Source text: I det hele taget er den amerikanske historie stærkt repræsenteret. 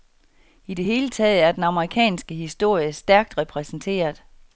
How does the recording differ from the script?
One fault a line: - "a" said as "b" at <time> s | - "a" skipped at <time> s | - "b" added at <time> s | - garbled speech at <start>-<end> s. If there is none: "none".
none